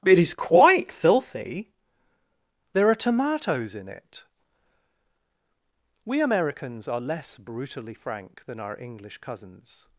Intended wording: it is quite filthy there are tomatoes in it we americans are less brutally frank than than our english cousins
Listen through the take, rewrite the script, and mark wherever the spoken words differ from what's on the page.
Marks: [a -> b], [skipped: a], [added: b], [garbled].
it is quite filthy there are tomatoes in it we americans are less brutally frank than [skipped: than] our english cousins